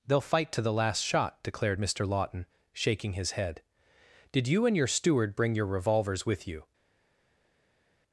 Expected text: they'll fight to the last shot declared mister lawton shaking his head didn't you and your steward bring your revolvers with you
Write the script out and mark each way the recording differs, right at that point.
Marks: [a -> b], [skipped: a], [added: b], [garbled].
they'll fight to the last shot declared mister lawton shaking his head [didn't -> did] you and your steward bring your revolvers with you